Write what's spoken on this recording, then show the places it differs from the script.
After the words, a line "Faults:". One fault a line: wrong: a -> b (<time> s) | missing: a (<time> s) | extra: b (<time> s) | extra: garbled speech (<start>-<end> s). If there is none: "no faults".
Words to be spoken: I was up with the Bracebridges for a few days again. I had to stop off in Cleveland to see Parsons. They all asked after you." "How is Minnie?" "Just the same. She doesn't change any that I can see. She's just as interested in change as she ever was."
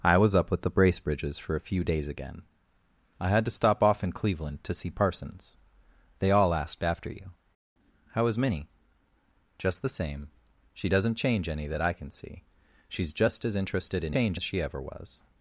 I was up with the Bracebridges for a few days again. I had to stop off in Cleveland to see Parsons. They all asked after you." "How is Minnie?" "Just the same. She doesn't change any that I can see. She's just as interested in change as she ever was."
Faults:
no faults